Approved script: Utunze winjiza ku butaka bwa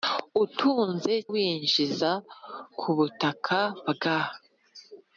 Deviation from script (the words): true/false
false